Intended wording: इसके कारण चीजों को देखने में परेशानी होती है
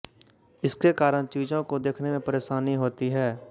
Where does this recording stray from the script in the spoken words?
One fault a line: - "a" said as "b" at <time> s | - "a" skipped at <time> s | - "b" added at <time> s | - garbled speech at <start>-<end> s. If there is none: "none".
none